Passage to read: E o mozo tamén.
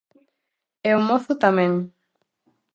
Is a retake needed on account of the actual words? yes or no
no